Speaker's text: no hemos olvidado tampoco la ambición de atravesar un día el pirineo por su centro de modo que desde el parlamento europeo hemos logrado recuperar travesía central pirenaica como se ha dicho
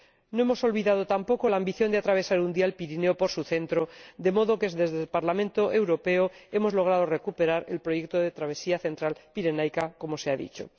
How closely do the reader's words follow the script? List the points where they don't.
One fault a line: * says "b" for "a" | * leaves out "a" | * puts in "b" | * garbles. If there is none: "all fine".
* puts in "el proyecto de"